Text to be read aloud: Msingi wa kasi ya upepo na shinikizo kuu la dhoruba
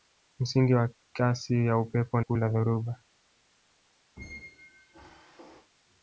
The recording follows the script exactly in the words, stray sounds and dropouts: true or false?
false